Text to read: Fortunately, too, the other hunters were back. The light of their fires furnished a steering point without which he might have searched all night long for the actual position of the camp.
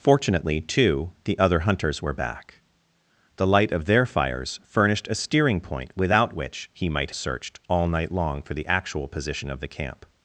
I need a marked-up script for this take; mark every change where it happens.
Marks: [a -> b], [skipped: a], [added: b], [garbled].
Fortunately, too, the other hunters were back. The light of their fires furnished a steering point without which he might [skipped: have] searched all night long for the actual position of the camp.